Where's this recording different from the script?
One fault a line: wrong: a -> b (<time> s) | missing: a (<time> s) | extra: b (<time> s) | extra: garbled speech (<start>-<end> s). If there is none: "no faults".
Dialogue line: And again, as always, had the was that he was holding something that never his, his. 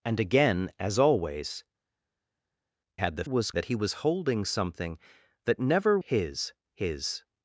no faults